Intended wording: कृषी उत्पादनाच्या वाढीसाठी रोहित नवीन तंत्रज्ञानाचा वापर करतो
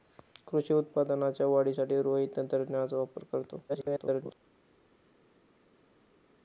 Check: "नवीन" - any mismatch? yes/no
yes